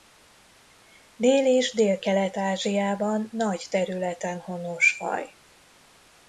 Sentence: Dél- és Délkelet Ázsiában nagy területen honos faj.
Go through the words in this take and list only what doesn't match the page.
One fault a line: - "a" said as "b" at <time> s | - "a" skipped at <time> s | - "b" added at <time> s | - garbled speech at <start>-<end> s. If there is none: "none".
none